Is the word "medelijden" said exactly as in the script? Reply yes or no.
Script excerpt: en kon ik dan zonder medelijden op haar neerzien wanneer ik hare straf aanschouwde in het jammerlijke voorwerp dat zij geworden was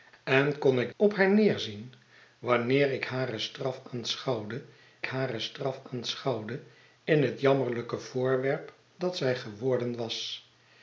no